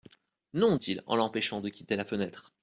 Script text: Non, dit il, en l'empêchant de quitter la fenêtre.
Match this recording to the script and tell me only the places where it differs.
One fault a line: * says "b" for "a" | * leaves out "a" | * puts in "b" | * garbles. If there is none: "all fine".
* leaves out "dit"